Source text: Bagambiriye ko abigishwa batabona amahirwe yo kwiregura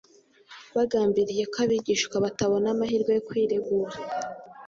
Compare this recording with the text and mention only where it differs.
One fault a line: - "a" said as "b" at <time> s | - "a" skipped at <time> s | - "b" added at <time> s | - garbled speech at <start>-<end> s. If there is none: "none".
none